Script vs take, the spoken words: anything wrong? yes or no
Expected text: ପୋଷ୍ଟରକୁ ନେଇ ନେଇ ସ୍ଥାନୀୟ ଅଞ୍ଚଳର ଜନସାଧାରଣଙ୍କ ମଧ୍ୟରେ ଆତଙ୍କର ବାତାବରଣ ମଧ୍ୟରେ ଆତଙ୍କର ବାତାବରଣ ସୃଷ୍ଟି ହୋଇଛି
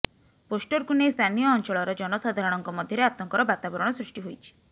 yes